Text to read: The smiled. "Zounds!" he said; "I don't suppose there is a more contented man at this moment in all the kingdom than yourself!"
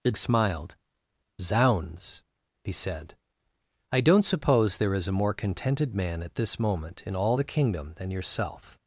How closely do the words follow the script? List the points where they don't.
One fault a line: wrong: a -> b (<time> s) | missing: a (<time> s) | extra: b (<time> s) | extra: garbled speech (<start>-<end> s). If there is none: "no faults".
no faults